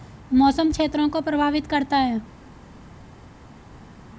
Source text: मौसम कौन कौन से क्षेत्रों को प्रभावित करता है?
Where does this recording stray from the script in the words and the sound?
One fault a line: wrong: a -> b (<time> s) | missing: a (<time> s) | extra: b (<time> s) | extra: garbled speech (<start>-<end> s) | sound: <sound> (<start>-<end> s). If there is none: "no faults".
missing: कौन कौन से (0.7 s)